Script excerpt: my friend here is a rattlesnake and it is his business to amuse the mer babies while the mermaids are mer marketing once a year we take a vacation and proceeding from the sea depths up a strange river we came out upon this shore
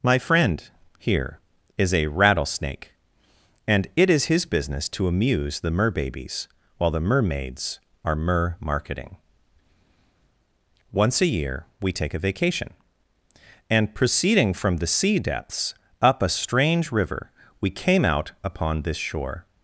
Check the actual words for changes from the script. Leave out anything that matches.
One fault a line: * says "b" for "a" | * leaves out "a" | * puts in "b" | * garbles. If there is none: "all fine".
all fine